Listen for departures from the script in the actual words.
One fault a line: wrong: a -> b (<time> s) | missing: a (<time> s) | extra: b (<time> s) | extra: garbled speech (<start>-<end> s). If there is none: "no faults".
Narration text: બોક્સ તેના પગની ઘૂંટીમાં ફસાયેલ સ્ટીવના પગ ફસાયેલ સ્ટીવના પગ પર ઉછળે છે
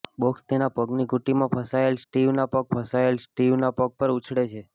no faults